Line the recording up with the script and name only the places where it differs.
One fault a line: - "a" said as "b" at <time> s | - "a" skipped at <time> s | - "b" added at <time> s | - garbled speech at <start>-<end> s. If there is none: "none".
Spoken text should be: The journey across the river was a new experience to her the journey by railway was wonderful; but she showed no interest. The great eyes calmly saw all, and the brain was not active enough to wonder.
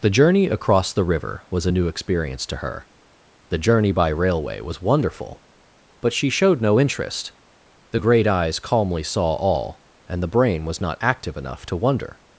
none